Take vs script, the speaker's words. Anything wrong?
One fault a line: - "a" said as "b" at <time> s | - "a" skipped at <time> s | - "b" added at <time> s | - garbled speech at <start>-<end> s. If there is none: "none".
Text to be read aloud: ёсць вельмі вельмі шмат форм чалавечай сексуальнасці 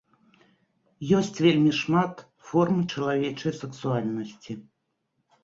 - "вельмі" skipped at 1.7 s